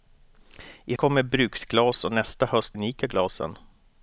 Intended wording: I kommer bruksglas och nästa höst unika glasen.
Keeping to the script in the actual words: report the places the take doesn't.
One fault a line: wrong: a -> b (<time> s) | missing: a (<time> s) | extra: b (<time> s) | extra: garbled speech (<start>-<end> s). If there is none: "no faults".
no faults